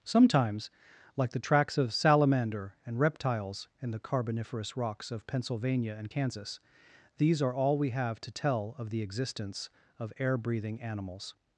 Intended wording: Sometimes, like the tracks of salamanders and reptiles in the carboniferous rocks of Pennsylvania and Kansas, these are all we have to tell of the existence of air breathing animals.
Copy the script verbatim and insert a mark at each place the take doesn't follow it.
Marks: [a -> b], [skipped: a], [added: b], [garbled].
Sometimes, like the tracks of [salamanders -> salamander] and reptiles in the carboniferous rocks of Pennsylvania and Kansas, these are all we have to tell of the existence of air breathing animals.